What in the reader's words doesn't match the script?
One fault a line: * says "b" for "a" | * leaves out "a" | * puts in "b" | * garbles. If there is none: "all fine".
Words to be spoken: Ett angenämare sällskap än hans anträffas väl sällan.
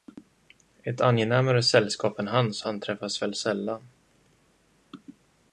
all fine